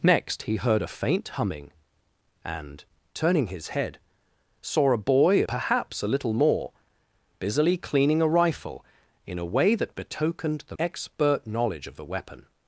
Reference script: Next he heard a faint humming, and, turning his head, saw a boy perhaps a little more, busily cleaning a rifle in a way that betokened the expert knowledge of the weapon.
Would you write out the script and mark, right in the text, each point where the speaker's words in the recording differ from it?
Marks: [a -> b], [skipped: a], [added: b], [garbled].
Next he heard a faint humming, and, turning his head, saw a boy perhaps a little more, busily cleaning a rifle in a way that betokened the expert knowledge of the weapon.